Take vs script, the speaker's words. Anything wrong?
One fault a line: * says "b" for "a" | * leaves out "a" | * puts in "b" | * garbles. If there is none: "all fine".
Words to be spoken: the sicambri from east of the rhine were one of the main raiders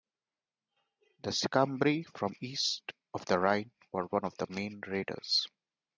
all fine